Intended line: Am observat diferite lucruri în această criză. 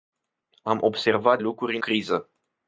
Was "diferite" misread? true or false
true